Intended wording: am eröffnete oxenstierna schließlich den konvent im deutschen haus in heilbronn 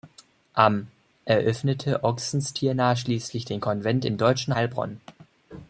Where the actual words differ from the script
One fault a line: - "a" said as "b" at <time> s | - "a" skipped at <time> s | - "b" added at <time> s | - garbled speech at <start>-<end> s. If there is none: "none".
- "haus in" skipped at 4.6 s